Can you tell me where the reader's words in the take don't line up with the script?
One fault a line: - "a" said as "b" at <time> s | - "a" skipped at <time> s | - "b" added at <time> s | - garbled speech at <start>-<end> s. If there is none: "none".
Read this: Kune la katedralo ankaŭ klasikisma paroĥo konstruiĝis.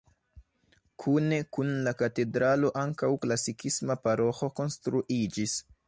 - "kun" added at 1.6 s